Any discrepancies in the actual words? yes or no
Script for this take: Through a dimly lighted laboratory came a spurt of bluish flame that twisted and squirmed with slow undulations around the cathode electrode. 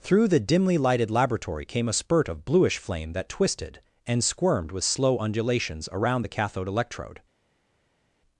yes